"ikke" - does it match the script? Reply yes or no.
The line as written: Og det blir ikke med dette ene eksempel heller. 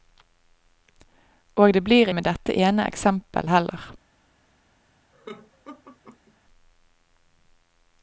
no